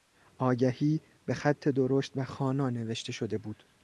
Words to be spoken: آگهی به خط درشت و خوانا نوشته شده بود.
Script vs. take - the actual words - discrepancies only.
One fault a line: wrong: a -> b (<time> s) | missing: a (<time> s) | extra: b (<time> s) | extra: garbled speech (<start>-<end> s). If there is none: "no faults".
no faults